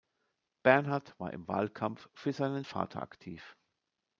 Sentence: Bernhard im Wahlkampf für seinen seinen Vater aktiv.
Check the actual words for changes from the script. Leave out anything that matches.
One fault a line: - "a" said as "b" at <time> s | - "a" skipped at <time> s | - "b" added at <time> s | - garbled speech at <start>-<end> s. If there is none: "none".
- "war" added at 1.2 s
- "seinen" skipped at 2.6 s